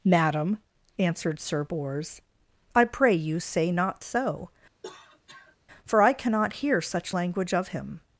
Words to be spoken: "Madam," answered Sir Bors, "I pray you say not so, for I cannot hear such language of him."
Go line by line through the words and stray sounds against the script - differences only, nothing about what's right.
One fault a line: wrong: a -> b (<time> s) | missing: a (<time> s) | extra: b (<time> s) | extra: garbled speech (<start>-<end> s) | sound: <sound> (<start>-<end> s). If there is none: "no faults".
sound: cough (4.8-5.6 s)